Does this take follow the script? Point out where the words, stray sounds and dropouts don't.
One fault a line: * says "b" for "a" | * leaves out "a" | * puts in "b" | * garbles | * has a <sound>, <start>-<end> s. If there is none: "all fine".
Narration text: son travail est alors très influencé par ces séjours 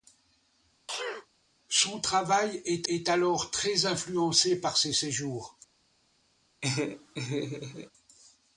* has a sneeze, 0.9-1.3 s
* puts in "est"
* has a laugh, 6.6-7.9 s